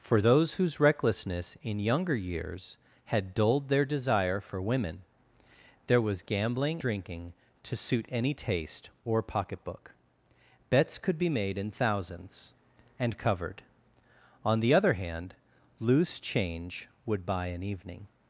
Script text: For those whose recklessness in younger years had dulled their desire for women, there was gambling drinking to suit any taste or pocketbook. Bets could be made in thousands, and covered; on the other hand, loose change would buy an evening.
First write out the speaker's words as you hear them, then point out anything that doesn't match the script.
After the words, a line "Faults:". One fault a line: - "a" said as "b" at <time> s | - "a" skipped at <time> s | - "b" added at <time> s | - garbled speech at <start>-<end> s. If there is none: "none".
For those whose recklessness in younger years had dulled their desire for women, there was gambling drinking to suit any taste or pocketbook. Bets could be made in thousands, and covered; on the other hand, loose change would buy an evening.
Faults:
none